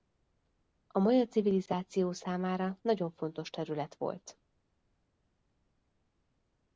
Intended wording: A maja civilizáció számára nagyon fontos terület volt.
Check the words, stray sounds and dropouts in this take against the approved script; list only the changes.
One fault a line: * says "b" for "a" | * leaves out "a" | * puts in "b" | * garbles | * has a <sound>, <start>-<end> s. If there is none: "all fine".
all fine